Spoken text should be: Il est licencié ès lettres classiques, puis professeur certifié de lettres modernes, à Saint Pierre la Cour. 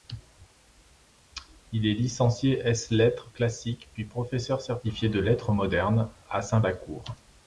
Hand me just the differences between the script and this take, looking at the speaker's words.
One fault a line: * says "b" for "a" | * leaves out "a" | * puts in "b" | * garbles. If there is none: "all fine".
* leaves out "Pierre"